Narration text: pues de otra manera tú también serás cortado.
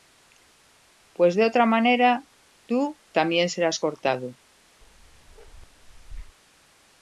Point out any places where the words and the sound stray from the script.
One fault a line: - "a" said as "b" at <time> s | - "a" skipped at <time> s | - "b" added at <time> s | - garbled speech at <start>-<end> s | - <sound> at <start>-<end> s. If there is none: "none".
- bark at 4.8-6.4 s